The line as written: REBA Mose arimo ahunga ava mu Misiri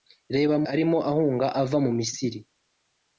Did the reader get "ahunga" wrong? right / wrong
right